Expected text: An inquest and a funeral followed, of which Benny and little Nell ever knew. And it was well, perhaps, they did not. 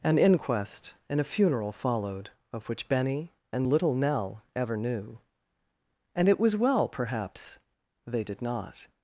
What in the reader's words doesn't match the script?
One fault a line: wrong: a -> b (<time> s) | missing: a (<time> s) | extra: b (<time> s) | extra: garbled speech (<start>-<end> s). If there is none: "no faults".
no faults